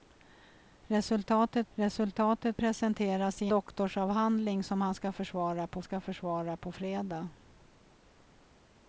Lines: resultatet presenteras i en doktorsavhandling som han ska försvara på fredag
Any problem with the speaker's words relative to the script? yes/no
yes